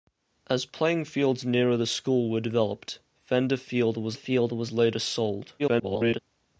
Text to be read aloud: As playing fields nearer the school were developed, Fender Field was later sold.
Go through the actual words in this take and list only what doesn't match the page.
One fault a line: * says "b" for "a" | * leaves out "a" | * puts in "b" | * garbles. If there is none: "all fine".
* puts in "Field was"
* garbles